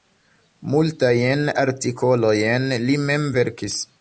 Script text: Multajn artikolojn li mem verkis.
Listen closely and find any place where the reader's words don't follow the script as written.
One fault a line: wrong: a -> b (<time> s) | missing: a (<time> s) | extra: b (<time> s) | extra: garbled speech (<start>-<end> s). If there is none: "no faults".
no faults